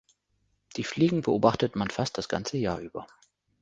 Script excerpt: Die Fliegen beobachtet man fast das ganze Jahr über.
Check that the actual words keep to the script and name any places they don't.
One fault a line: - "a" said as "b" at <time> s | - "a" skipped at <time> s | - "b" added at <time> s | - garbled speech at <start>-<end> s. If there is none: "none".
none